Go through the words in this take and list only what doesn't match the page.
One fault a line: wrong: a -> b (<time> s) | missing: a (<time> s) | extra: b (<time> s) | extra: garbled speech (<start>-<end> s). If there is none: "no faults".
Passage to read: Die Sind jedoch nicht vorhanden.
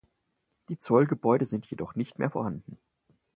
extra: Zollgebäude (0.8 s)
extra: mehr (2.2 s)